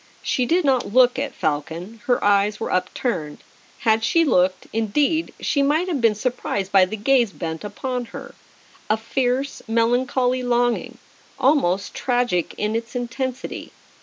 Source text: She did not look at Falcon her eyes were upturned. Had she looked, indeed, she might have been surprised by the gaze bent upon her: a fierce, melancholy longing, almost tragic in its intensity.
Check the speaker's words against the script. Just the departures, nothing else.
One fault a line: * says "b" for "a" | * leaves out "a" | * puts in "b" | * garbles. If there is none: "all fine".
all fine